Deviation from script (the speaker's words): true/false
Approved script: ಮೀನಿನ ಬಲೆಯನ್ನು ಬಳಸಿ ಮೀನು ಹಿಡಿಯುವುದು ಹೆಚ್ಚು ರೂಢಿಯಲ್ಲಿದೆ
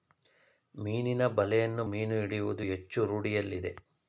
true